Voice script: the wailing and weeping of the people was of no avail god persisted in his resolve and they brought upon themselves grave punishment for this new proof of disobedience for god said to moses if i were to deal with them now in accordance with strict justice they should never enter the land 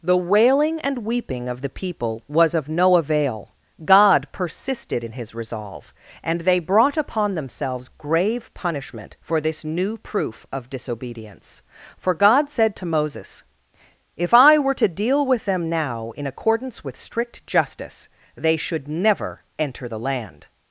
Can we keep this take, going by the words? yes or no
yes